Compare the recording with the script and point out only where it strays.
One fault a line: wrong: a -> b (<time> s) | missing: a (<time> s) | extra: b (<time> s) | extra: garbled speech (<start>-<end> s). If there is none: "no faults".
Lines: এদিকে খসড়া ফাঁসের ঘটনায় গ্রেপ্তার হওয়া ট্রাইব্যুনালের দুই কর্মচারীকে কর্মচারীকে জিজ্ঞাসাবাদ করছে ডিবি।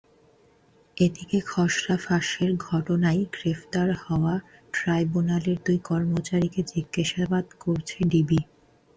missing: কর্মচারীকে (6.6 s)